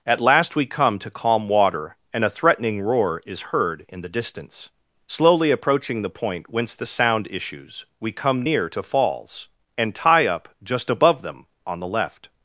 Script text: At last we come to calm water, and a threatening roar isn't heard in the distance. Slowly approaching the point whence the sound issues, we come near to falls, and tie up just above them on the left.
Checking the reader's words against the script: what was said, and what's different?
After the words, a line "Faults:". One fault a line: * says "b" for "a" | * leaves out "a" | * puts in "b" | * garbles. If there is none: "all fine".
At last we come to calm water, and a threatening roar is heard in the distance. Slowly approaching the point whence the sound issues, we come near to falls, and tie up just above them on the left.
Faults:
* says "is" for "isn't"